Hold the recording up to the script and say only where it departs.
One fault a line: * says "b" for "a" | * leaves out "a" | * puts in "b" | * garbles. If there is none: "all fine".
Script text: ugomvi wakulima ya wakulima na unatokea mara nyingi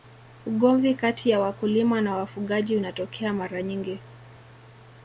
* says "kati" for "wakulima"
* puts in "wafugaji"